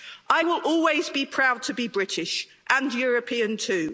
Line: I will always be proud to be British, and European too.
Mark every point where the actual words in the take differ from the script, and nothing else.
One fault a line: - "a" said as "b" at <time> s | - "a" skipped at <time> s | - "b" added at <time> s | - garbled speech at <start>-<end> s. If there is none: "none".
none